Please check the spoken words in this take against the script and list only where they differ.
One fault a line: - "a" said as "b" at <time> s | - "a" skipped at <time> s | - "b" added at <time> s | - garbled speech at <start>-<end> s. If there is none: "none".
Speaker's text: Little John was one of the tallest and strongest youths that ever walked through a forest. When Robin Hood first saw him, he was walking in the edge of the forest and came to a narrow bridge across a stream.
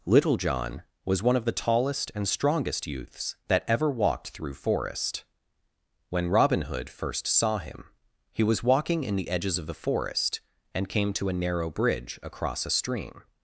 - "a" skipped at 4.5 s
- "edge" said as "edges" at 9.3 s